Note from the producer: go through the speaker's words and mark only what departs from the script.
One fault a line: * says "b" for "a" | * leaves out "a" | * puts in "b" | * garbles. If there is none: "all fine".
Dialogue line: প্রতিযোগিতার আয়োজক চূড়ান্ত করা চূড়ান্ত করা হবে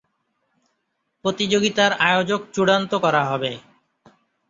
* leaves out "চূড়ান্ত করা"